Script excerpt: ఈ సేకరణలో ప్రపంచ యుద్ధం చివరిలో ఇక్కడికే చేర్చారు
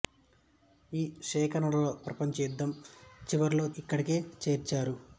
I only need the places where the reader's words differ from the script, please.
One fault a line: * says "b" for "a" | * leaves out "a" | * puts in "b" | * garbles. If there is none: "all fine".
all fine